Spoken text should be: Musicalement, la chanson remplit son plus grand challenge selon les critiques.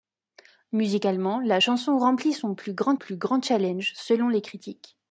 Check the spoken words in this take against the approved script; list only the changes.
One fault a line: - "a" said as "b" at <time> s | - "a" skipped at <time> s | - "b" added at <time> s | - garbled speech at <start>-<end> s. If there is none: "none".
- "plus grand" added at 3.0 s